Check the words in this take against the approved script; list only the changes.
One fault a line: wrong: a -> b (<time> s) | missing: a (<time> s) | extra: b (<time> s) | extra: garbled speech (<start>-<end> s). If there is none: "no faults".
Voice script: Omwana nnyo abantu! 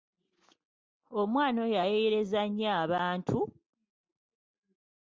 extra: oyo ayeeyereza (1.6 s)